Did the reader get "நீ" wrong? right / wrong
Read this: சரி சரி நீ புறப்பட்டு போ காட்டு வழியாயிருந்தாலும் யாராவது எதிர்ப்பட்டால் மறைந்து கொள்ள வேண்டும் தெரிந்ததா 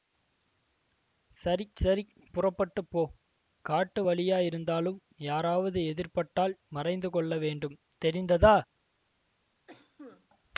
wrong